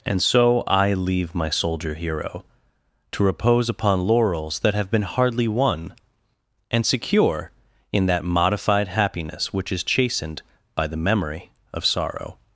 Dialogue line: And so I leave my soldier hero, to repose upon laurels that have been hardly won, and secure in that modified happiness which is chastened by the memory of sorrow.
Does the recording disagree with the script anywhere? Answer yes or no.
no